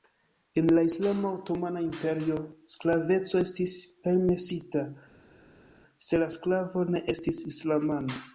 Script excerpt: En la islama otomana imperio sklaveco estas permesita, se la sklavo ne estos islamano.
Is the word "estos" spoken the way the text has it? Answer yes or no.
no